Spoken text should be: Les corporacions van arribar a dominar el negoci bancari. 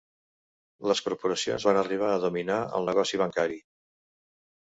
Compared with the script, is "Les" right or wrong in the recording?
right